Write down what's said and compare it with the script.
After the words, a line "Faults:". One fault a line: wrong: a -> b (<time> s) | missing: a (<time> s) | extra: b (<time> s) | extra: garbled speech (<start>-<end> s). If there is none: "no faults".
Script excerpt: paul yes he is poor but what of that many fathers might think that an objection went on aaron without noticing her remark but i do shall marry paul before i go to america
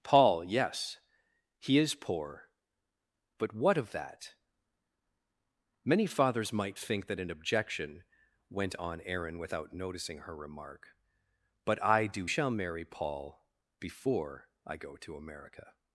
paul yes he is poor but what of that many fathers might think that an objection went on aaron without noticing her remark but i do shall marry paul before i go to america
Faults:
no faults